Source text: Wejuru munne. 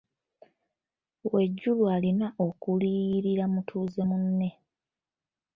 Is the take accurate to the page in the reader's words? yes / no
no